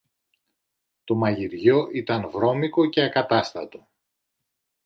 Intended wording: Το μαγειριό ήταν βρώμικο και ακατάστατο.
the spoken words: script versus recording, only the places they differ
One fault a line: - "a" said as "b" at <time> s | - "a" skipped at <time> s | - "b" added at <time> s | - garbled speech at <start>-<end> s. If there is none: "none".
none